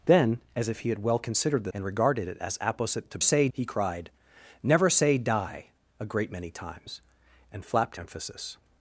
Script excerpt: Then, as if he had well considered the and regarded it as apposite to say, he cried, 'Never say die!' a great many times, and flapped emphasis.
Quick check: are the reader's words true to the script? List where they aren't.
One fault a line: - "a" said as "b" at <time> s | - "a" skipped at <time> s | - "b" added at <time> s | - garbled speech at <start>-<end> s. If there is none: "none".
none